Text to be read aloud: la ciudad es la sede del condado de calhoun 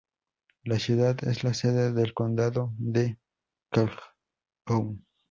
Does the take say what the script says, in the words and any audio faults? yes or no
yes